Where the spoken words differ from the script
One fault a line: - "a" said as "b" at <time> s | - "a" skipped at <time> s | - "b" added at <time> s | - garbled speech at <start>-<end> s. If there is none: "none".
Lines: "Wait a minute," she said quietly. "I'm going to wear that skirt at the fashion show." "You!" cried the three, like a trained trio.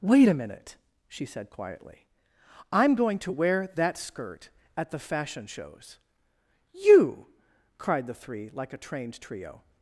- "show" said as "shows" at 5.4 s